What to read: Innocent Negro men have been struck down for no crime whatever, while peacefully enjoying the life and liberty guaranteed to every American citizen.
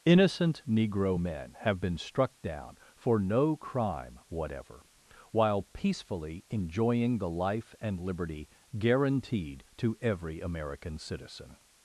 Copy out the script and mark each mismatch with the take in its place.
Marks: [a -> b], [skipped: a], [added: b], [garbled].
Innocent Negro men have been struck down for no crime whatever, while peacefully enjoying the life and liberty guaranteed to every American citizen.